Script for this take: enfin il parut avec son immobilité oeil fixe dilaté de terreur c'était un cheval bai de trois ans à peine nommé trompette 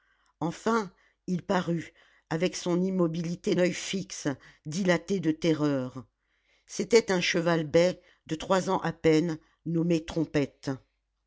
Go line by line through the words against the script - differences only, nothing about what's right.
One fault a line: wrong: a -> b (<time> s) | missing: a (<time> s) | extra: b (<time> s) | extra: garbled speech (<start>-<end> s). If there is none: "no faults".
no faults